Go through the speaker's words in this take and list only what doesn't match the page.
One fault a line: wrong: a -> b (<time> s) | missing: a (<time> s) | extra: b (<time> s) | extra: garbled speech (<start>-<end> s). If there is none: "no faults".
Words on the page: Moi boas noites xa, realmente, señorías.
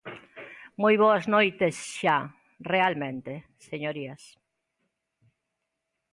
no faults